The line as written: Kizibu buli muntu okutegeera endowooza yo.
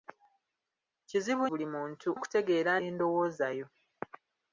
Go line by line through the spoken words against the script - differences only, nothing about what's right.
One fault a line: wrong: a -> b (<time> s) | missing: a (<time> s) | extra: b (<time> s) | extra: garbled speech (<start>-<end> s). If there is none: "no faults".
no faults